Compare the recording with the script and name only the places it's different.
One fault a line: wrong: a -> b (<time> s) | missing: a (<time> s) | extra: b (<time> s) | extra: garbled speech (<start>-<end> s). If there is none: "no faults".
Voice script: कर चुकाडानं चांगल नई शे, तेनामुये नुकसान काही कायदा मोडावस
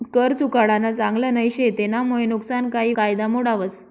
no faults